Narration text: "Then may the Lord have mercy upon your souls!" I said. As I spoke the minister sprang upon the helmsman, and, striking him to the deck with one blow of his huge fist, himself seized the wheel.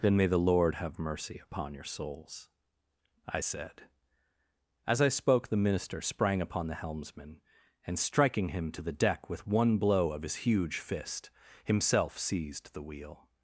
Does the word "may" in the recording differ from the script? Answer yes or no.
no